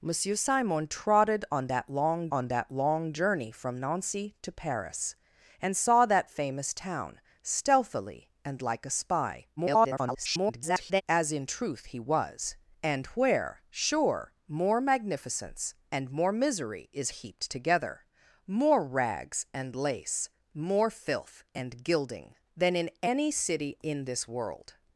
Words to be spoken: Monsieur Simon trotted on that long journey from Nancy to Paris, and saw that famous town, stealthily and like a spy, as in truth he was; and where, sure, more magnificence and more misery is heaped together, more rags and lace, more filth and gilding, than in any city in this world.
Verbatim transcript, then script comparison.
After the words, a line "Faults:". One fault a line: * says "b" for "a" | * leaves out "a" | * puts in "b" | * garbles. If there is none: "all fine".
Monsieur Simon trotted on that long on that long journey from Nancy to Paris, and saw that famous town, stealthily and like a spy, [garbled] as in truth he was; and where, sure, more magnificence and more misery is heaped together, more rags and lace, more filth and gilding, than in any city in this world.
Faults:
* puts in "on that long"
* garbles